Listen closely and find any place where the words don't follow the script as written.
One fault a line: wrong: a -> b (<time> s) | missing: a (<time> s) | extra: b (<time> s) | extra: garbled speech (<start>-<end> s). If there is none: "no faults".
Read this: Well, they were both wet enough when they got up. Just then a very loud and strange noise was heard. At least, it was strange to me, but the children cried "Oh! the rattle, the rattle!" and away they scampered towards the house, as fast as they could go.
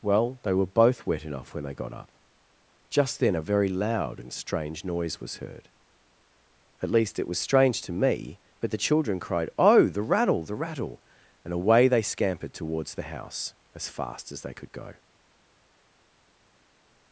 no faults